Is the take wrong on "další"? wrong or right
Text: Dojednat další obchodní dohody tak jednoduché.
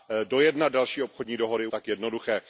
right